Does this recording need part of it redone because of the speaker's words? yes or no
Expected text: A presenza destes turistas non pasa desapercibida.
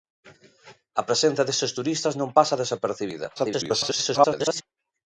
yes